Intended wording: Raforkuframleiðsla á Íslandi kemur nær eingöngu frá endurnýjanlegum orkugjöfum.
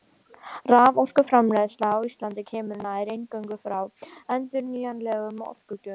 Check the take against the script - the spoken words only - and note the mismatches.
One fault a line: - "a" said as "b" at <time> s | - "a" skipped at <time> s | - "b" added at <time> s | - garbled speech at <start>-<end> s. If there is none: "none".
none